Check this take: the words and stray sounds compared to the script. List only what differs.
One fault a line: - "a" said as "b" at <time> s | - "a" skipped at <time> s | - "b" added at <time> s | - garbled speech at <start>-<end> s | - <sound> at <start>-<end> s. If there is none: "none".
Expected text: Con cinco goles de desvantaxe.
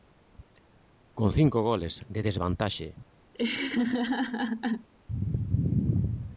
- laugh at 3.3-4.9 s